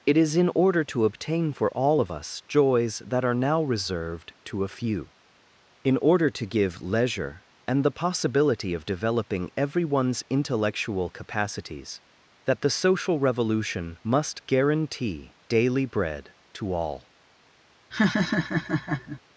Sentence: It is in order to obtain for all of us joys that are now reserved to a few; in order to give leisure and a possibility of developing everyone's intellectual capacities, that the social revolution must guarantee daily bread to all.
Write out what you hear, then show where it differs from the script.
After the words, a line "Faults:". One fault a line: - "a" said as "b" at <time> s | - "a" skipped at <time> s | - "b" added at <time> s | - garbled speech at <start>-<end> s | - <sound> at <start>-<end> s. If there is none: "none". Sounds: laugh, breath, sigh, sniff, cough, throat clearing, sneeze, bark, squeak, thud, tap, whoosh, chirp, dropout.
It is in order to obtain for all of us joys that are now reserved to a few; in order to give leisure and the possibility of developing everyone's intellectual capacities, that the social revolution must guarantee daily bread to all.
Faults:
- "a" said as "the" at 7.8 s
- laugh at 17.9-19.2 s